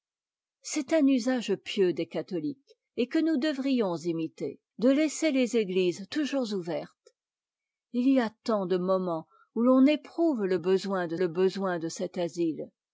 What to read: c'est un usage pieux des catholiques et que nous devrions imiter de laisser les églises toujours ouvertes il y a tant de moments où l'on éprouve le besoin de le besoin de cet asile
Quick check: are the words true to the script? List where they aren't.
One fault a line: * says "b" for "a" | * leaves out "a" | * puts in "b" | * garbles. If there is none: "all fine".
all fine